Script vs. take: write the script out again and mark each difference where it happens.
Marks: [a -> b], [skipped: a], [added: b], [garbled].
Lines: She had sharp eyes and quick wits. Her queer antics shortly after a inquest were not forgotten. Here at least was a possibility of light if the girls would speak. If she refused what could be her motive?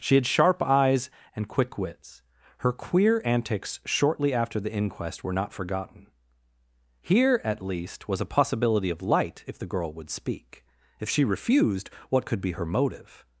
She had sharp eyes and quick wits. Her queer antics shortly after [a -> the] inquest were not forgotten. Here at least was a possibility of light if the [girls -> girl] would speak. If she refused what could be her motive?